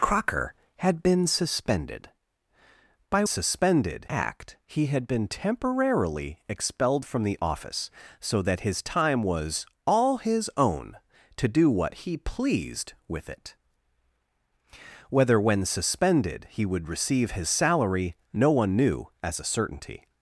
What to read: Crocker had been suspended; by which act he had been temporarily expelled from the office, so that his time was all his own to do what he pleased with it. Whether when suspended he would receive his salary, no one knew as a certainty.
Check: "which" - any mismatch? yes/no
yes